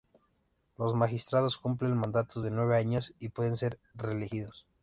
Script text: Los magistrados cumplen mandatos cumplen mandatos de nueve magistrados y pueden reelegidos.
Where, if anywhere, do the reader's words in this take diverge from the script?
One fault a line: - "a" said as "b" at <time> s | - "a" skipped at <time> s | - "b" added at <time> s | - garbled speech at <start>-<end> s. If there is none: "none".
- "cumplen mandatos" skipped at 2.4 s
- "magistrados" said as "años" at 2.8 s
- "ser" added at 3.6 s